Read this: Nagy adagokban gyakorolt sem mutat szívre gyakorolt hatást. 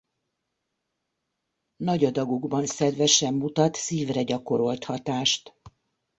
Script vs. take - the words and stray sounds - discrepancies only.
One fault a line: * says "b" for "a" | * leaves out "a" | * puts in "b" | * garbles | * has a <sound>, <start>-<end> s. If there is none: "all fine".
* says "szedve" for "gyakorolt"